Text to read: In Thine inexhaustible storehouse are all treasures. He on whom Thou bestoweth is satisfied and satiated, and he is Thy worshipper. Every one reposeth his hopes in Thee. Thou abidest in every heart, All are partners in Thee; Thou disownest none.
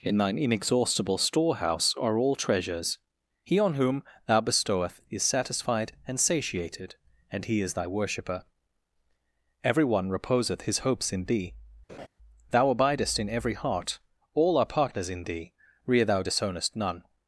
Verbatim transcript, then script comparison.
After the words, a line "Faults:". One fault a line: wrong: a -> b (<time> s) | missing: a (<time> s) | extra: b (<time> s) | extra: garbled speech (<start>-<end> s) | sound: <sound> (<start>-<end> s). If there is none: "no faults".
In Thine inexhaustible storehouse are all treasures. He on whom Thou bestoweth is satisfied and satiated, and he is Thy worshipper. Every one reposeth his hopes in Thee. Thou abidest in every heart, All are partners in Thee; rear Thou disownest none.
Faults:
sound: laugh (11.9-12.1 s)
extra: rear (15.9 s)